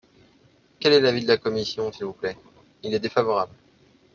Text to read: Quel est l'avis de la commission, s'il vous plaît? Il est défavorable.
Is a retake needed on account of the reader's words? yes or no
no